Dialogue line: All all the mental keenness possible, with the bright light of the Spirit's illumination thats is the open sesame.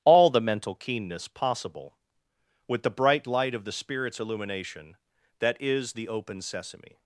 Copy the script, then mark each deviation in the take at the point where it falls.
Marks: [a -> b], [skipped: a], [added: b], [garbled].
All [skipped: all] the mental keenness possible, with the bright light of the Spirit's illumination [thats -> that] is the open sesame.